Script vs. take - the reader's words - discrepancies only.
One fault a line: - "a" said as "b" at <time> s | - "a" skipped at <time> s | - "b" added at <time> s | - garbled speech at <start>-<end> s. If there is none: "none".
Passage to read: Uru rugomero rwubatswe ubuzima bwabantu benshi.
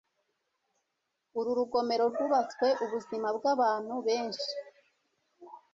none